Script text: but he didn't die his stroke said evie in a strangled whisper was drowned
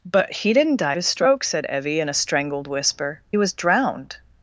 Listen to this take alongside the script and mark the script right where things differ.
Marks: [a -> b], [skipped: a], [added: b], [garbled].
but he didn't die his stroke said evie in a strangled whisper was drowned